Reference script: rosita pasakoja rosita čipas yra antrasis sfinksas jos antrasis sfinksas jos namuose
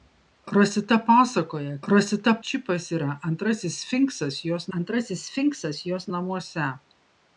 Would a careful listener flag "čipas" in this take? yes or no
no